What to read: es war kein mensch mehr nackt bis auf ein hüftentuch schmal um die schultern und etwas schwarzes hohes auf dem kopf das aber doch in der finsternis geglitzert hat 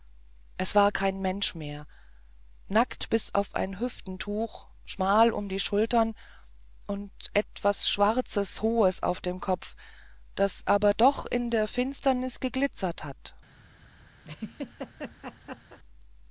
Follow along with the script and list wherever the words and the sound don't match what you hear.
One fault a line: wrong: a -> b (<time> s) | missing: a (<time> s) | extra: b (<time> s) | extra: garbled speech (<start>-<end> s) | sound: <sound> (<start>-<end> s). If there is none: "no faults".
sound: laugh (14.2-15.8 s)